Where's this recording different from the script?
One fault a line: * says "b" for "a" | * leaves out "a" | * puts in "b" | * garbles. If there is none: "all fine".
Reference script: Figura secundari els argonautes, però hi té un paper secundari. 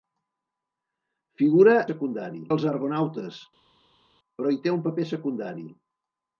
all fine